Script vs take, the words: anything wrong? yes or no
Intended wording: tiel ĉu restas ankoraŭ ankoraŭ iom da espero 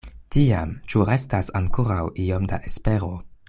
yes